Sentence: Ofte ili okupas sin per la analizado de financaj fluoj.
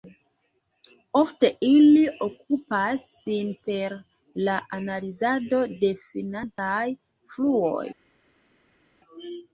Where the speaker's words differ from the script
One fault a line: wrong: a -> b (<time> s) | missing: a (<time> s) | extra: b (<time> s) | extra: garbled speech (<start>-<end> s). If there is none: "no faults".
no faults